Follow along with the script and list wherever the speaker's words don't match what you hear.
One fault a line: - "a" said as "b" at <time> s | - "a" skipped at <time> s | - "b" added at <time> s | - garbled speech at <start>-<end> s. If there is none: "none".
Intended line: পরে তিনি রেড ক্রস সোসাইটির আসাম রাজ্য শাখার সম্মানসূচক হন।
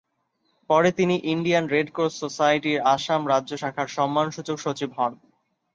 - "ইন্ডিয়ান" added at 1.3 s
- "সচিব" added at 4.6 s